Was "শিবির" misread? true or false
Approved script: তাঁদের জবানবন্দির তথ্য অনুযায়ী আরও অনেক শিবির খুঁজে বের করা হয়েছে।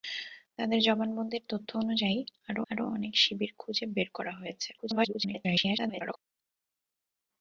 false